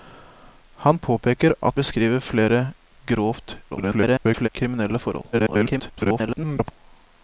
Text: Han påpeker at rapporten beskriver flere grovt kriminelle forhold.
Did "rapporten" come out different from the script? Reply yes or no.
yes